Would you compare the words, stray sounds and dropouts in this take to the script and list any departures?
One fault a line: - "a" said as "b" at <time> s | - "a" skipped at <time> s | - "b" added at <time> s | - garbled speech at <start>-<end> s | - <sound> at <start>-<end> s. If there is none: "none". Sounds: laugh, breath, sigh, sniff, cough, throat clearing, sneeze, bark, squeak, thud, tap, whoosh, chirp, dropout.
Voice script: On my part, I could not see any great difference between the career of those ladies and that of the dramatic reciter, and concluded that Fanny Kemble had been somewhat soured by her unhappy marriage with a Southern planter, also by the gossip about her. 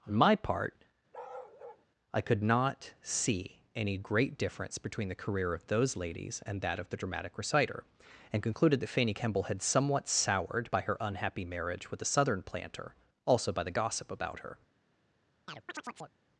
- bark at 1.1-1.9 s
- "been" skipped at 9.6 s
- chirp at 15.5-16.2 s